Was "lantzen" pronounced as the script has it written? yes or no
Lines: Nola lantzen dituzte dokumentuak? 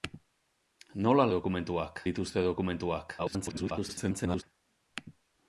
no